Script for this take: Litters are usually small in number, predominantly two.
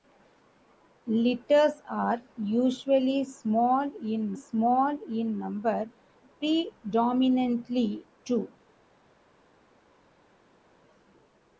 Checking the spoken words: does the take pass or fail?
fail